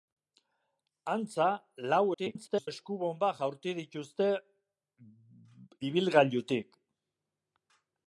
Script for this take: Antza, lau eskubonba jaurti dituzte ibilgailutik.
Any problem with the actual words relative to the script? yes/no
yes